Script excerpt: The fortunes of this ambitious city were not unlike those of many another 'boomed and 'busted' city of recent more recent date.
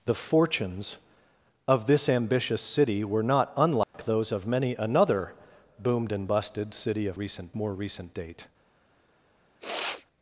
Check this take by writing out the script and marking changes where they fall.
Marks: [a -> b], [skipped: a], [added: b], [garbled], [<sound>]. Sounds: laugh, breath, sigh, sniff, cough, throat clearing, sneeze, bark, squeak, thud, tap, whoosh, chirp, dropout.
The fortunes of this ambitious city were not unlike [dropout] those of many another 'boomed and 'busted' city of recent more recent date. [sniff]